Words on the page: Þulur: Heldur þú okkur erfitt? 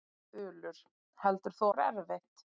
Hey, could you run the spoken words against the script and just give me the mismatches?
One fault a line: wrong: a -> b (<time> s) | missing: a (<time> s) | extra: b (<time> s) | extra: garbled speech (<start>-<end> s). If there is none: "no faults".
no faults